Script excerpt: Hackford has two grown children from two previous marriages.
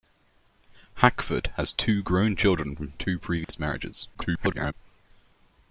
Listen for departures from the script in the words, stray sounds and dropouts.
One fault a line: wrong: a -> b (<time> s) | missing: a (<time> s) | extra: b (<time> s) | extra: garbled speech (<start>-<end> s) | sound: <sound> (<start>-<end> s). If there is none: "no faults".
sound: dropout (3.4-3.5 s)
extra: garbled speech (4.1-4.7 s)